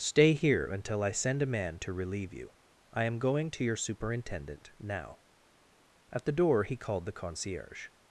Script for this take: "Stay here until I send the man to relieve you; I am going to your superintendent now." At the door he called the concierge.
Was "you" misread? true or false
false